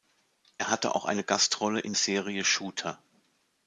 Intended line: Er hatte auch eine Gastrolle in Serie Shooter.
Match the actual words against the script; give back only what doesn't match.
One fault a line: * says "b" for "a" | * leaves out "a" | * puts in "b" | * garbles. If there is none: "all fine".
all fine